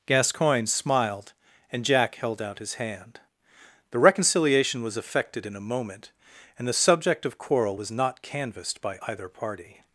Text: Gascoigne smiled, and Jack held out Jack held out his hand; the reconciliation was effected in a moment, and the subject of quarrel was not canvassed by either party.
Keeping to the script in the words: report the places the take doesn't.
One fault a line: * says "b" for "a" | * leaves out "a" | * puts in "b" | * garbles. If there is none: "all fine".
* leaves out "Jack held out"